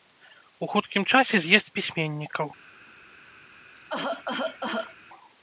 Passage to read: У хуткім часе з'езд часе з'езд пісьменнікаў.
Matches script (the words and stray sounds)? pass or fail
fail